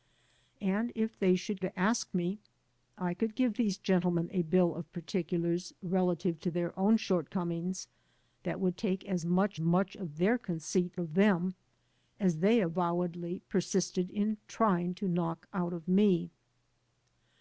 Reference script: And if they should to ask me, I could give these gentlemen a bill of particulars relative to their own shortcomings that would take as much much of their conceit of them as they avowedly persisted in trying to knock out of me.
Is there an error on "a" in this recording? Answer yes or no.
no